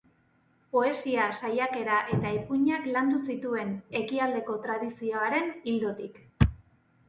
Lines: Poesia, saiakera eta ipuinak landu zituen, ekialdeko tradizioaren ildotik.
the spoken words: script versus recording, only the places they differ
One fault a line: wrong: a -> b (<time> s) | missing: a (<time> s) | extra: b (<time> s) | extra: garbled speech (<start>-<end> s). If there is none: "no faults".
no faults